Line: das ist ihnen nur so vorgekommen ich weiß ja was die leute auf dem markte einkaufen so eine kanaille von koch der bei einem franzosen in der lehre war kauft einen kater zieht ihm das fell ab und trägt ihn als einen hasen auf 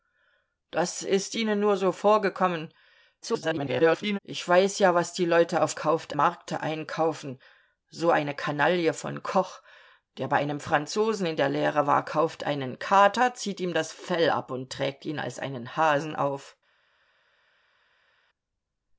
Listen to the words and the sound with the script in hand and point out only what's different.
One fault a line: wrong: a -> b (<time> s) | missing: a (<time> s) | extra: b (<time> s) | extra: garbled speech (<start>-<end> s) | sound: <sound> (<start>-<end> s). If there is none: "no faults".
extra: garbled speech (3.2-4.2 s)
wrong: dem -> kauft (5.8 s)